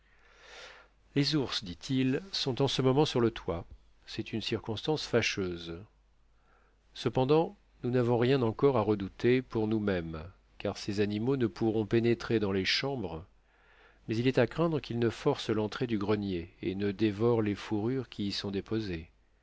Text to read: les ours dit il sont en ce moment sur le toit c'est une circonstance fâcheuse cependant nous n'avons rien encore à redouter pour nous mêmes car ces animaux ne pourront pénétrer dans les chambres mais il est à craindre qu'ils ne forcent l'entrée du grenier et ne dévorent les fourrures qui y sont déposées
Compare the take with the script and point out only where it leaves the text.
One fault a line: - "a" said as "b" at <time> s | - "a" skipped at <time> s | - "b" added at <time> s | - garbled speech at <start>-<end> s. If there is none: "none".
none